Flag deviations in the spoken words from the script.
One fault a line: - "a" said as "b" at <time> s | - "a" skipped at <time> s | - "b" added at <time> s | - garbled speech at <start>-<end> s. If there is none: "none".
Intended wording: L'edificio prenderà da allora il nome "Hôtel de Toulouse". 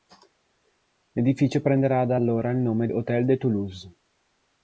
none